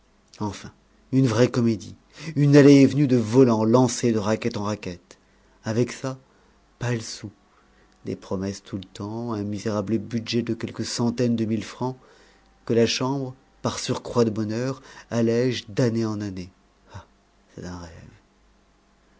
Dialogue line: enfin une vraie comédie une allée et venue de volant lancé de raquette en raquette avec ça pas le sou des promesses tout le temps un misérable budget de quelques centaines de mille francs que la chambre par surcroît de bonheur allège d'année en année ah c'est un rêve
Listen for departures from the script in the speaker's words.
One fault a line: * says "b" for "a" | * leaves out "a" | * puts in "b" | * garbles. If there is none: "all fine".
all fine